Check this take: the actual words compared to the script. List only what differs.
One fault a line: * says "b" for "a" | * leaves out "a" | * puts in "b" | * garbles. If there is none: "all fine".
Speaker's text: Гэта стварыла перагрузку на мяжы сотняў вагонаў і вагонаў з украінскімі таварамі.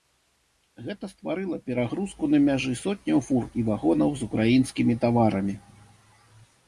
* says "фур" for "вагонаў"